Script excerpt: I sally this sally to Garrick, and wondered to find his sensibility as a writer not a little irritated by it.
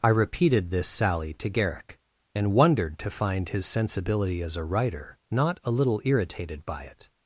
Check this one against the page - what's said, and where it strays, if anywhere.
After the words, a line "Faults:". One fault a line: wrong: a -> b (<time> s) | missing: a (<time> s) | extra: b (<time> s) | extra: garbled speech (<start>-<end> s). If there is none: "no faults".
I repeated this sally to Garrick, and wondered to find his sensibility as a writer not a little irritated by it.
Faults:
wrong: sally -> repeated (0.1 s)